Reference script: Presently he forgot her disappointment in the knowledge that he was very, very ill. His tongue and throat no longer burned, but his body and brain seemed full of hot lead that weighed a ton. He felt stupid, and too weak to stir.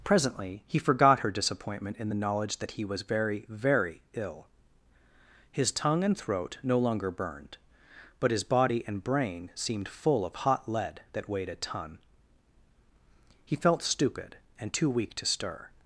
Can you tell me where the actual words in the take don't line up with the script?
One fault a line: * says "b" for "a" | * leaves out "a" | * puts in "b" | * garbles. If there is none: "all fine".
all fine